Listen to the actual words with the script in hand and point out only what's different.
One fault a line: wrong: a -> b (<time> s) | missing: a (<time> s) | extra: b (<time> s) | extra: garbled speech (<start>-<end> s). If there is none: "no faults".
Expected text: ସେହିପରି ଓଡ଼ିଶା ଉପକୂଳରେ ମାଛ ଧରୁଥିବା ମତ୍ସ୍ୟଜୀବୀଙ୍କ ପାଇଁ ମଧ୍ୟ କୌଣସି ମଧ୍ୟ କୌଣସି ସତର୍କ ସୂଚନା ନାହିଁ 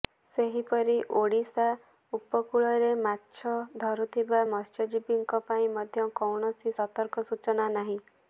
missing: ମଧ୍ୟ କୌଣସି (6.8 s)